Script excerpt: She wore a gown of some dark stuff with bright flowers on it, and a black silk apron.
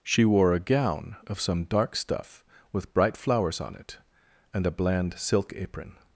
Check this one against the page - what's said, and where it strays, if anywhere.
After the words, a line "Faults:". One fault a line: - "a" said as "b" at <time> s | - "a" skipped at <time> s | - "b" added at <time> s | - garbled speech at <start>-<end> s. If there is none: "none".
She wore a gown of some dark stuff with bright flowers on it, and a bland silk apron.
Faults:
- "black" said as "bland" at 4.7 s